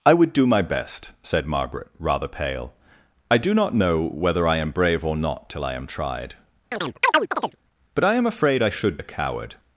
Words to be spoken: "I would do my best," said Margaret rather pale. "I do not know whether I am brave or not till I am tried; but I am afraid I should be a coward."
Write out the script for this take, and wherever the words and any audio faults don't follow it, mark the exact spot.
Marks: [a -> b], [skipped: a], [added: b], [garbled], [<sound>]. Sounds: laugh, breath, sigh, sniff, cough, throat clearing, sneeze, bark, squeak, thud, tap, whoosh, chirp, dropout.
"I would do my best," said Margaret rather pale. "I do not know whether I am brave or not till I am tried; [chirp] but I am afraid I should [skipped: be] a coward."